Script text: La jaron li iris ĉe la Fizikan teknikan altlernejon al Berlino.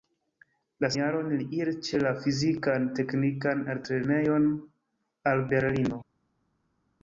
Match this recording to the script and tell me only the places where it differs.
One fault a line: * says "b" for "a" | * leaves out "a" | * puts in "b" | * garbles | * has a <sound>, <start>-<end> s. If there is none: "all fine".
all fine